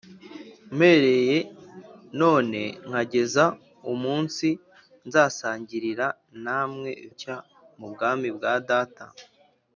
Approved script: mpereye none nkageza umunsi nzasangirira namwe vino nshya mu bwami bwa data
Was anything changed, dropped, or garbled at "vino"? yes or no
yes